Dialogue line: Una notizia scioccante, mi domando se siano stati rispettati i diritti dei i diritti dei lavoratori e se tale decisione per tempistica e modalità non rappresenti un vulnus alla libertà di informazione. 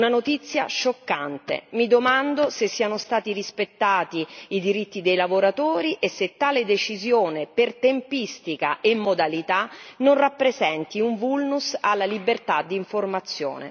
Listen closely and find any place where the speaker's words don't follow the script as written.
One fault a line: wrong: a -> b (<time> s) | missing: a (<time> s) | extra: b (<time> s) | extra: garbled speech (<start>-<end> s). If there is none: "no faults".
missing: i diritti dei (5.2 s)